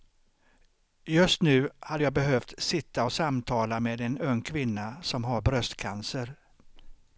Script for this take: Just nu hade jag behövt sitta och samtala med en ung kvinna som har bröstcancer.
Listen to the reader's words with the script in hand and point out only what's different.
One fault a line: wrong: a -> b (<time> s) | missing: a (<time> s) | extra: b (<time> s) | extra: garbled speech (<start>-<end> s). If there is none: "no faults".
no faults